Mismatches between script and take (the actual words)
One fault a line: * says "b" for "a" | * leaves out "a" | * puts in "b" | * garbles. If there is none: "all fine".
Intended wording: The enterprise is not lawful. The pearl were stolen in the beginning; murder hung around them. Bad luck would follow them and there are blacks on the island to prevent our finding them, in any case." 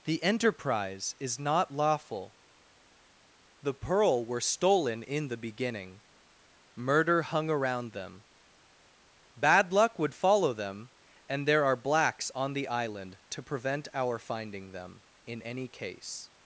all fine